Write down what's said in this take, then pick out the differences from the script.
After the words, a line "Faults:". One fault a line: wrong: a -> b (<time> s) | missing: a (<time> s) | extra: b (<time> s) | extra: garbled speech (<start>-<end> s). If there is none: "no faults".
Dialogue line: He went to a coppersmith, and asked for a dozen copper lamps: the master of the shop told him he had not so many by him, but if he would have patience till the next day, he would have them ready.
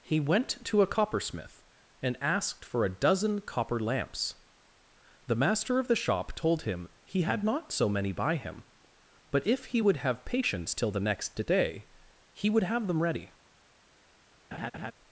He went to a coppersmith, and asked for a dozen copper lamps: the master of the shop told him he had not so many by him, but if he would have patience till the next day, he would have them ready.
Faults:
no faults